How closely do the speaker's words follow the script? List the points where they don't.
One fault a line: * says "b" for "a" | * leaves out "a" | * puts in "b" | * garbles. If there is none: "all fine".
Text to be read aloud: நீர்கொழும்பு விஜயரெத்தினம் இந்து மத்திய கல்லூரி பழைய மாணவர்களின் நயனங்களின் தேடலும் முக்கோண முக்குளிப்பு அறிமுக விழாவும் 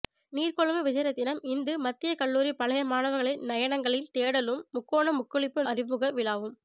all fine